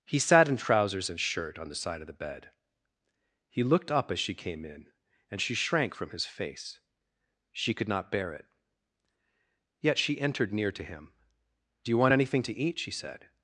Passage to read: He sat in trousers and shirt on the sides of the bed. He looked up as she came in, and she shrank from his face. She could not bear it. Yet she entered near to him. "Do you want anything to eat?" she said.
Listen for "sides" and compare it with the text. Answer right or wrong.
wrong